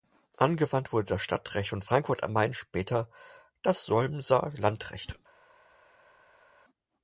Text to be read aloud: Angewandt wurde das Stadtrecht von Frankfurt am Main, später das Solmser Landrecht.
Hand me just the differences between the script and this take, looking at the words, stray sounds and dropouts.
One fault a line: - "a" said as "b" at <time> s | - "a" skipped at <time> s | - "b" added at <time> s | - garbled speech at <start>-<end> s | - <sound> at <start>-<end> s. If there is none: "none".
none